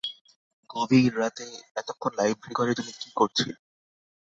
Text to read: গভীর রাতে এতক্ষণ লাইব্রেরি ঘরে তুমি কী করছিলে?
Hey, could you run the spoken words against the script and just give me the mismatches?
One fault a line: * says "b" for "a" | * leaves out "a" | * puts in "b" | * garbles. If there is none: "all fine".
all fine